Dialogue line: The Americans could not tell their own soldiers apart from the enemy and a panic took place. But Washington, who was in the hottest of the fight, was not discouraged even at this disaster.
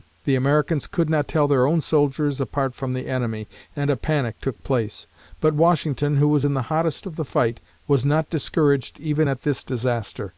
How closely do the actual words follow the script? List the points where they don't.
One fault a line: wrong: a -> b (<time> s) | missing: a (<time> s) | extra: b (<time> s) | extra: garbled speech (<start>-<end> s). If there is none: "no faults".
no faults